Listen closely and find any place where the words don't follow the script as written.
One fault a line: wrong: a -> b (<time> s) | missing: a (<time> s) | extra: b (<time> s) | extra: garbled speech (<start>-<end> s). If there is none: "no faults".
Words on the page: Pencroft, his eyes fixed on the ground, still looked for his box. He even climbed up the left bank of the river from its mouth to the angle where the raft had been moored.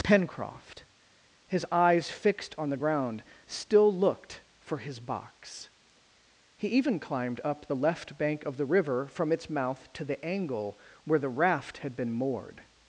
no faults